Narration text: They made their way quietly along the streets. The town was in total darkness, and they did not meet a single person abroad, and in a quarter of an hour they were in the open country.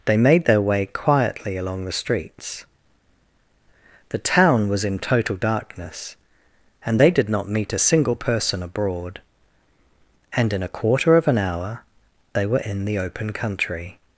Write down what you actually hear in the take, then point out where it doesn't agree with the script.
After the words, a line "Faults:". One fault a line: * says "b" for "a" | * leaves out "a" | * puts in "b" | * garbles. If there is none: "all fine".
They made their way quietly along the streets. The town was in total darkness, and they did not meet a single person abroad, and in a quarter of an hour they were in the open country.
Faults:
all fine